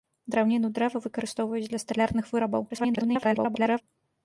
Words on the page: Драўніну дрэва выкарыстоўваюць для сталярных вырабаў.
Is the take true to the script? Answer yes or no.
no